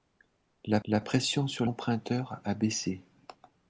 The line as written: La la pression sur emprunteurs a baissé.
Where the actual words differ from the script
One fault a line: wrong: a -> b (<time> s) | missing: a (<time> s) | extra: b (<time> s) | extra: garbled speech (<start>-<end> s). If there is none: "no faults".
no faults